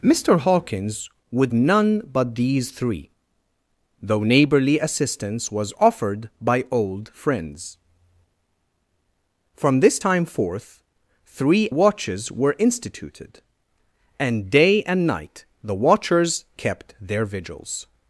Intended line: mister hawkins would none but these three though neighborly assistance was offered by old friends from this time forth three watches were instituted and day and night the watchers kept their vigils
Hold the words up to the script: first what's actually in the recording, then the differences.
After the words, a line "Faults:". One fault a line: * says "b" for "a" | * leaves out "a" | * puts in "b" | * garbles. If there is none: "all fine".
mister hawkins would none but these three though neighborly assistance was offered by old friends from this time forth three watches were instituted and day and night the watchers kept their vigils
Faults:
all fine